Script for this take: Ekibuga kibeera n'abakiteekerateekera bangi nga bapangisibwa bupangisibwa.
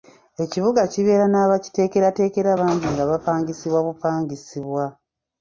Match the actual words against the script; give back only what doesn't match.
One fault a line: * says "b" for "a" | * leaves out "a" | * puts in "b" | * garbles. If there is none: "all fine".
all fine